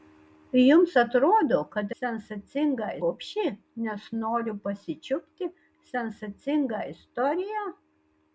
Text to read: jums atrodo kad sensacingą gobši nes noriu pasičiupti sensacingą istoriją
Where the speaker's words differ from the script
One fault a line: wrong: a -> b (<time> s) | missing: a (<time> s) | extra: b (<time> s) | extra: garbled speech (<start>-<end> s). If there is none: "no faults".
no faults